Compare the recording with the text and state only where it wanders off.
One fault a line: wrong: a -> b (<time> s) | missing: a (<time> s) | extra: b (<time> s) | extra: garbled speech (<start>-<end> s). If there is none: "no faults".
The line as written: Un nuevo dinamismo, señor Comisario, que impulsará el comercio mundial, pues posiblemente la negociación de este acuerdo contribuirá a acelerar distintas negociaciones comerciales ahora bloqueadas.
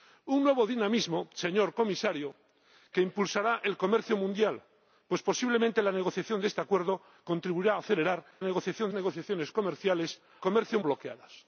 wrong: distintas -> negociación (8.4 s)
wrong: ahora -> comercio (10.4 s)